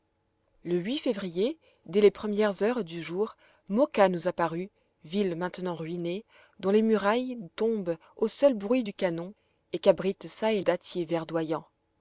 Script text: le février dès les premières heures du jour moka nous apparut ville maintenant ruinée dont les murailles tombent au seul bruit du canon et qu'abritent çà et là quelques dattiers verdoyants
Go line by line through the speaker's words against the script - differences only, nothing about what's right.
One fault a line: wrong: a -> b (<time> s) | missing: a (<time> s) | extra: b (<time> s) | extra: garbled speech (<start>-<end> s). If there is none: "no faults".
missing: là quelques (10.6 s)